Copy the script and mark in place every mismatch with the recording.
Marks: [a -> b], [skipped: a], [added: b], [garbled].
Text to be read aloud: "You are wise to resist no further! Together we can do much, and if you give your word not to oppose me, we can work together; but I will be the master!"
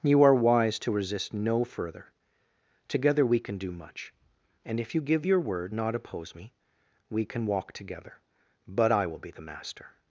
"You are wise to resist no further! Together we can do much, and if you give your word not [skipped: to] oppose me, we can [work -> walk] together; but I will be the master!"